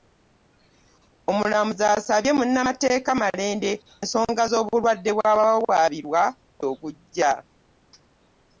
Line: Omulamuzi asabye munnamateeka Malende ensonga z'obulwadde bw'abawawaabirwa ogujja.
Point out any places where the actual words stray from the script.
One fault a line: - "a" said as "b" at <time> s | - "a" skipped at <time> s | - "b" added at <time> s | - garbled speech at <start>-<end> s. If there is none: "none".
none